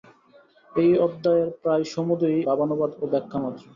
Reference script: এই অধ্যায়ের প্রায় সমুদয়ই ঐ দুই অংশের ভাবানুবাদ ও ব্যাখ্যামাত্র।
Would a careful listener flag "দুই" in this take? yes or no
yes